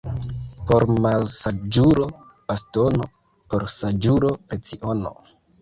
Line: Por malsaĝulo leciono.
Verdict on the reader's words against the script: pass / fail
fail